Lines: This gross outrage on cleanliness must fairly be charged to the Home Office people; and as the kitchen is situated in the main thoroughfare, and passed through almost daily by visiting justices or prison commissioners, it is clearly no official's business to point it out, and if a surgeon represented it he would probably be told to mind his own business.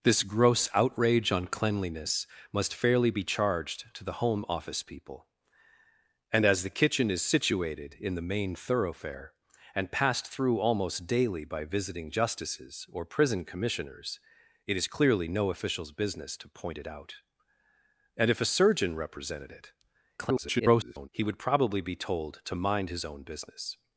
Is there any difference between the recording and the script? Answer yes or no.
yes